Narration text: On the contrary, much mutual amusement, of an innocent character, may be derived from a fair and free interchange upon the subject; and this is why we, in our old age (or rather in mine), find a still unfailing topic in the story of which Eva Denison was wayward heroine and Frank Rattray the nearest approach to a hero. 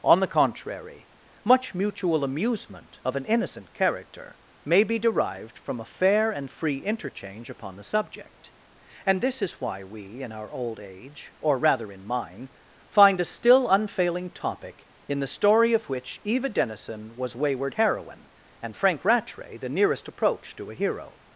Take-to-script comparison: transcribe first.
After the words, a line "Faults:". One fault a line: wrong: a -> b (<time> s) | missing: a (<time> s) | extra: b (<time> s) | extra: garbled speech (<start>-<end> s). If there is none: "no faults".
On the contrary, much mutual amusement, of an innocent character, may be derived from a fair and free interchange upon the subject; and this is why we, in our old age (or rather in mine), find a still unfailing topic in the story of which Eva Denison was wayward heroine and Frank Rattray the nearest approach to a hero.
Faults:
no faults